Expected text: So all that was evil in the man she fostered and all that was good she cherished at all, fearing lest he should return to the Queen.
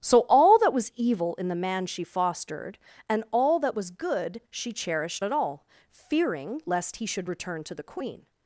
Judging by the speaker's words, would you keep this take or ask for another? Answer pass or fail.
pass